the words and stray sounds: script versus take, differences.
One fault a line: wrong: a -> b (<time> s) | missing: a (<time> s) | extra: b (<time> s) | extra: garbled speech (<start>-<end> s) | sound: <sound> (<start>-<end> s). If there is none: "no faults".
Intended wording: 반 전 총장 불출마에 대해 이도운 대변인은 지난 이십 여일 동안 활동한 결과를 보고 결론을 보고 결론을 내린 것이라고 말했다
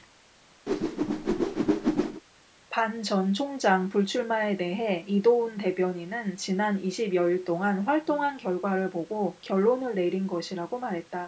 sound: whoosh (0.7-2.2 s)
missing: 보고 결론을 (9.9 s)